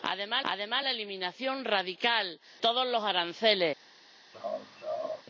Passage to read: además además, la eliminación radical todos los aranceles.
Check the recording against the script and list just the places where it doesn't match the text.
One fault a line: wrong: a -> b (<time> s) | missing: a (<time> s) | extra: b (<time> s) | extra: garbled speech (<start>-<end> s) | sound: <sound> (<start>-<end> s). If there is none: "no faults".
sound: laugh (4.3-5.2 s)